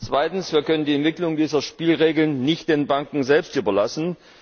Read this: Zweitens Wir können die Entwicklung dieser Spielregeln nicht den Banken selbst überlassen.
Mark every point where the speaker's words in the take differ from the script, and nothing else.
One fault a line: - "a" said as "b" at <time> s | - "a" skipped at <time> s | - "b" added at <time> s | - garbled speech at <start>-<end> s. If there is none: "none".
none